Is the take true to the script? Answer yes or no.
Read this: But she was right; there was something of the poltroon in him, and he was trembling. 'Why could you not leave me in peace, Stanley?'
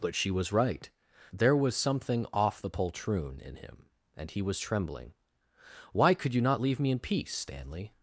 no